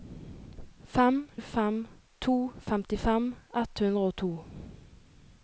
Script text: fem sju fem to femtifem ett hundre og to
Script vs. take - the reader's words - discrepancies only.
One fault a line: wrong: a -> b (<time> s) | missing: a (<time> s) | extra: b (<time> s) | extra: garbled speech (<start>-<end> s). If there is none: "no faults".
missing: sju (1.3 s)